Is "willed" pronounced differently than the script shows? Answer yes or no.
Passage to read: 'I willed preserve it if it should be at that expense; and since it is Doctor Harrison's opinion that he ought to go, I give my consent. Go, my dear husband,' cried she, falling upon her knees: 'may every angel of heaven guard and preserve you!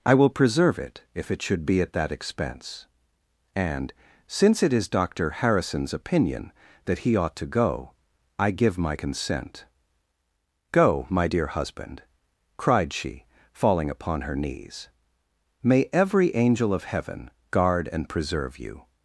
yes